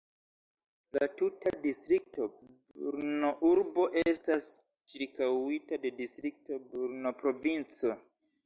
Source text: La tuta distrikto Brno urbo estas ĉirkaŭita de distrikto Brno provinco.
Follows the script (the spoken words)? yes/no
yes